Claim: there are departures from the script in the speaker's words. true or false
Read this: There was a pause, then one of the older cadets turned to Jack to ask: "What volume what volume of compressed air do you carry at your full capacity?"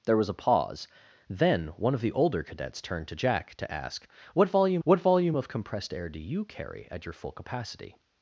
false